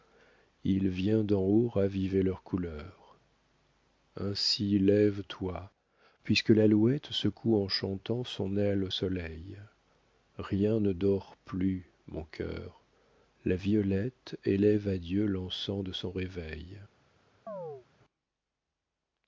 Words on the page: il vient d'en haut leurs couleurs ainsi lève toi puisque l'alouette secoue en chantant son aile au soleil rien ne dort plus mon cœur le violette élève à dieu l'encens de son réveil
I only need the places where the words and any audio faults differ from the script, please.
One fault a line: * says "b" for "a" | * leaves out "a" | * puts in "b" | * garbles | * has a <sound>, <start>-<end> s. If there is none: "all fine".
* puts in "raviver"
* says "la" for "le"
* has a chirp, 17.5-17.9 s